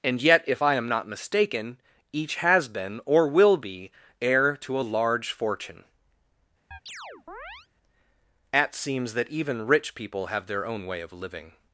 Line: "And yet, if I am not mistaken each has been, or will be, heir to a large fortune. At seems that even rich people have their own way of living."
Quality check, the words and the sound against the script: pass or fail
fail